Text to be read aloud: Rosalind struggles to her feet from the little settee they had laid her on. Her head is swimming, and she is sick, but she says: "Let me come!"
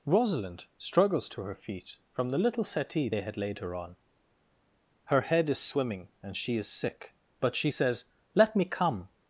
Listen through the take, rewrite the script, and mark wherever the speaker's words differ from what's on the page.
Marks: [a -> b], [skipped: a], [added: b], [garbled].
Rosalind struggles to her feet from the little settee they had laid her on. Her head is swimming, and she is sick, but she says: "Let me come!"